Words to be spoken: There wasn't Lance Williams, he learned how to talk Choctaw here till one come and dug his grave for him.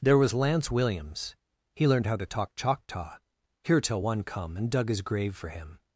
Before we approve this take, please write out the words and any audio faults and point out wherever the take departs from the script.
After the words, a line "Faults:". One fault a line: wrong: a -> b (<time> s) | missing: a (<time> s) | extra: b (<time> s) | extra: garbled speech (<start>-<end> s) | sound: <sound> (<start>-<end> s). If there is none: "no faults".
There was Lance Williams, he learned how to talk Choctaw here till one come and dug his grave for him.
Faults:
wrong: wasn't -> was (0.2 s)